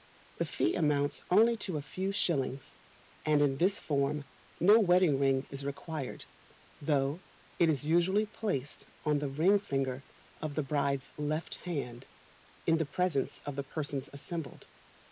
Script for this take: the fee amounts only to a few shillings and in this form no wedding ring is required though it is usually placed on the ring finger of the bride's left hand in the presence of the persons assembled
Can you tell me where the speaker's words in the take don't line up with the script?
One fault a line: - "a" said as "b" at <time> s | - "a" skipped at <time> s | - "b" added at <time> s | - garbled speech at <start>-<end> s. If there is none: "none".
none